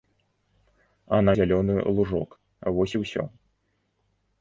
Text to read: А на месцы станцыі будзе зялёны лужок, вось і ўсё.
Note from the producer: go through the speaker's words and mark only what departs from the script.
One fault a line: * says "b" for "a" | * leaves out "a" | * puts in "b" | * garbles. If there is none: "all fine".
* leaves out "месцы станцыі будзе"